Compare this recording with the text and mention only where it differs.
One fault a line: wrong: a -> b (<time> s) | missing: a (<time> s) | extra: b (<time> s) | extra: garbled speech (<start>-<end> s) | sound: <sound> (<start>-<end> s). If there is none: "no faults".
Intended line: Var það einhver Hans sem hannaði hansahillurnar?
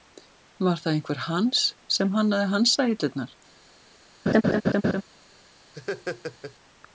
sound: laugh (4.3-5.0 s)
sound: laugh (5.7-6.6 s)